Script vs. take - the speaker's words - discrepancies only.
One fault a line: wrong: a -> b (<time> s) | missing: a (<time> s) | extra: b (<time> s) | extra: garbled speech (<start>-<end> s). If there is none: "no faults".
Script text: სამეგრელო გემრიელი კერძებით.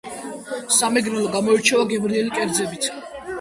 extra: გამოირჩევა (1.4 s)